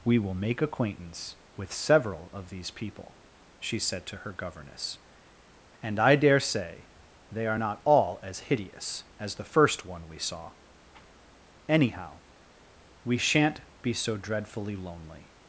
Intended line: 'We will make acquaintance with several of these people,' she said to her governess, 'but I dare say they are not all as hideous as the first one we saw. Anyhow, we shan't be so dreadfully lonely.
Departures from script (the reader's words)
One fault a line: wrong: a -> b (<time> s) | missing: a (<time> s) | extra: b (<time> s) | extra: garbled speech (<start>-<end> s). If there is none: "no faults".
wrong: but -> and (5.8 s)